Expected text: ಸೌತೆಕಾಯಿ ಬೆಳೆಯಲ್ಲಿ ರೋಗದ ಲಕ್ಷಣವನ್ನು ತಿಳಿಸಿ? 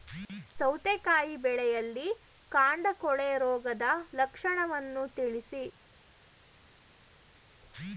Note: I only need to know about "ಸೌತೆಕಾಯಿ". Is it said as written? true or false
true